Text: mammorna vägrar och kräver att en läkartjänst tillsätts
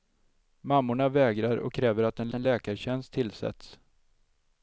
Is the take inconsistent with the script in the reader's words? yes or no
yes